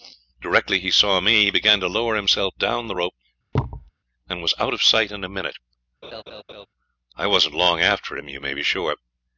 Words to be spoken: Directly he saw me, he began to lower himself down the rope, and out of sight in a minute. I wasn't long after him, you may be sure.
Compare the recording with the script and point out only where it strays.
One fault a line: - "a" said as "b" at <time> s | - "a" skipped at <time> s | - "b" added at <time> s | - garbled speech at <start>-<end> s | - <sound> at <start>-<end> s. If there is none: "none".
- thud at 3.5-3.9 s
- "was" added at 4.4 s
- laugh at 6.0-6.7 s